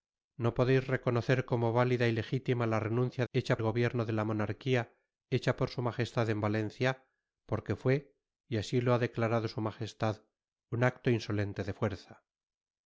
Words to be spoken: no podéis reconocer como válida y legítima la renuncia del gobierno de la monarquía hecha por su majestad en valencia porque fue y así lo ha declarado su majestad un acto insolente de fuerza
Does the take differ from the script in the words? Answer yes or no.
yes